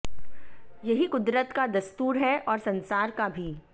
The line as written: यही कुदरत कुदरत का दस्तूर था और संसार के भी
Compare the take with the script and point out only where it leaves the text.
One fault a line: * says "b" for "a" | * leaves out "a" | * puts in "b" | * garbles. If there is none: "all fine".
* leaves out "कुदरत"
* says "है" for "था"
* says "का" for "के"